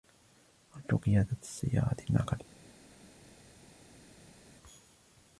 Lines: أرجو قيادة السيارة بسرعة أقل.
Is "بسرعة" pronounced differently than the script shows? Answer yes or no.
yes